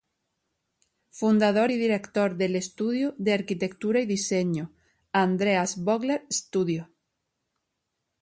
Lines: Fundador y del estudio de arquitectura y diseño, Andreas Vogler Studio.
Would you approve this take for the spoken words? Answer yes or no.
no